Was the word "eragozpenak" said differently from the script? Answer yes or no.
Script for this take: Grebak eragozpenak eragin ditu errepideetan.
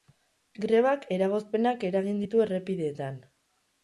no